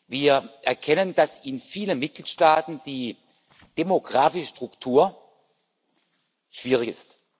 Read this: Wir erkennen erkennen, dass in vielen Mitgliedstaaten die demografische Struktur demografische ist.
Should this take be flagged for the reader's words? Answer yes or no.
yes